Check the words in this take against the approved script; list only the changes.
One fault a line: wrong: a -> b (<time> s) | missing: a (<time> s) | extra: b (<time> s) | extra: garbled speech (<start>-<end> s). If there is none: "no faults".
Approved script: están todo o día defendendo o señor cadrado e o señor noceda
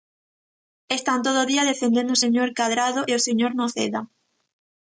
no faults